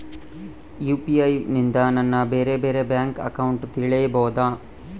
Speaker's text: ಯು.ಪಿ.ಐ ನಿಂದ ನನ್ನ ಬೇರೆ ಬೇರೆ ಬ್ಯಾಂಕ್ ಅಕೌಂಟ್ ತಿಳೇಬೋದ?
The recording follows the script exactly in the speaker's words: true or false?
true